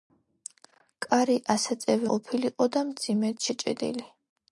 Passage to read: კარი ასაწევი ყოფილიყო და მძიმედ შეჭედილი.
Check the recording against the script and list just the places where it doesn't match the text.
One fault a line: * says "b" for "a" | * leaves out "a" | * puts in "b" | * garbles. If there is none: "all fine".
all fine